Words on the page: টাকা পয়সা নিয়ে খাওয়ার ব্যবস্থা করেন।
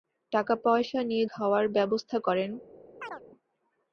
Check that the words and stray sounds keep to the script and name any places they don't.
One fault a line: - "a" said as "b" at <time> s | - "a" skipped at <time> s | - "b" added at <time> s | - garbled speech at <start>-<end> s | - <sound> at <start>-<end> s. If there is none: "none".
- chirp at 3.0-3.2 s